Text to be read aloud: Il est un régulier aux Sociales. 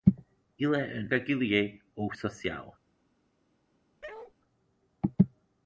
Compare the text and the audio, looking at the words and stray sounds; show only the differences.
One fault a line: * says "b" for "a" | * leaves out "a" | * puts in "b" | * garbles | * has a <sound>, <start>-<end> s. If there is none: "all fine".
* has a bark, 4.0-4.3 s